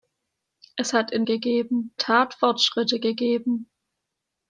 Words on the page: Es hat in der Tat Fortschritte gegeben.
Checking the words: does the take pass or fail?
fail